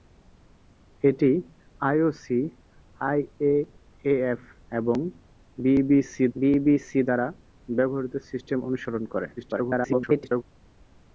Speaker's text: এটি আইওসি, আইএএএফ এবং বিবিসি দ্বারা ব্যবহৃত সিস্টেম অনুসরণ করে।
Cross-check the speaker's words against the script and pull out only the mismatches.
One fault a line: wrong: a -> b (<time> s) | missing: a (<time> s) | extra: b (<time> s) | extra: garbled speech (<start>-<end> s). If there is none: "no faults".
extra: বিবিসি (6.3 s)
extra: garbled speech (9.4-10.4 s)